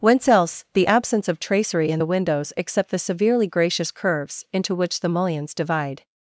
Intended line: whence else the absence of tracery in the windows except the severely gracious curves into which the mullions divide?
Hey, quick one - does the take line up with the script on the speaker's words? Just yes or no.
yes